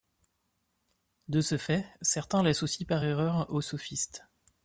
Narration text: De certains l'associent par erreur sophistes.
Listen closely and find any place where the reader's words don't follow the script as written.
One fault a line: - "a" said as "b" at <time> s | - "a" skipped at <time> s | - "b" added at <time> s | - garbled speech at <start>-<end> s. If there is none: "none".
- "ce fait" added at 1.4 s
- "aux" added at 3.5 s